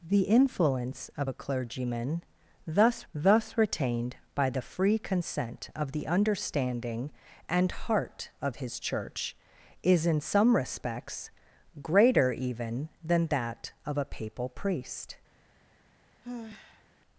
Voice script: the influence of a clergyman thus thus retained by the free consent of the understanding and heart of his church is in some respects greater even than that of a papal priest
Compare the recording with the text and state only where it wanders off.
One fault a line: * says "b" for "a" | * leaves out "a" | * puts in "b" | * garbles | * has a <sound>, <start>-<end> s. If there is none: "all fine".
* has a sigh, 16.2-16.9 s